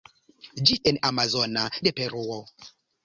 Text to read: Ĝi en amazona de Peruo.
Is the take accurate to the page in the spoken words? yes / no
yes